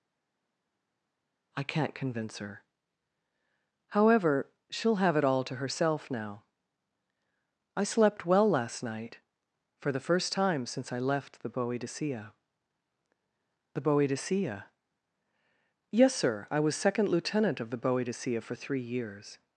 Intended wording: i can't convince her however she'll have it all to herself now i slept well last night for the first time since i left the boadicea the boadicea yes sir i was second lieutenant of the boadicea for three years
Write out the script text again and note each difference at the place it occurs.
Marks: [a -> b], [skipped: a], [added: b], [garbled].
i can't convince her however she'll have it all to herself now i slept well last night for the first time since i left the boadicea the boadicea yes sir i was second lieutenant of the boadicea for three years